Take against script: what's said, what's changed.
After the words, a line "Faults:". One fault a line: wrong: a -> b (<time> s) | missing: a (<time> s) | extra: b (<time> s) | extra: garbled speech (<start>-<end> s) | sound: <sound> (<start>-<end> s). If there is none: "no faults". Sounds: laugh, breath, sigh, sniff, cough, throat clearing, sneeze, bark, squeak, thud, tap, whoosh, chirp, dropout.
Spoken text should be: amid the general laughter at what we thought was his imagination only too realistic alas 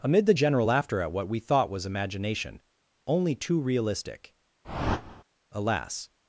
amid the general laughter at what we thought was imagination only too realistic alas
Faults:
missing: his (1.8 s)
sound: whoosh (4.6-5.2 s)